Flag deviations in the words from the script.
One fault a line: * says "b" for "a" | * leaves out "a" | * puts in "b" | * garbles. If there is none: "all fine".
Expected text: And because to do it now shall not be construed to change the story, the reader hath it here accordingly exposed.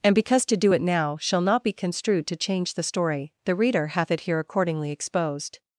all fine